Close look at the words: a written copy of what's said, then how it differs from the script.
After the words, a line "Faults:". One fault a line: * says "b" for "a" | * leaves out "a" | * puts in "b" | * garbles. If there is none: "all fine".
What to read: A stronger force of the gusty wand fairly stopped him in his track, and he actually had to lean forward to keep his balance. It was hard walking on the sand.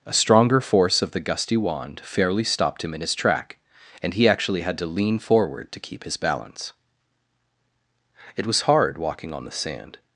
A stronger force of the gusty wand fairly stopped him in his track, and he actually had to lean forward to keep his balance. It was hard walking on the sand.
Faults:
all fine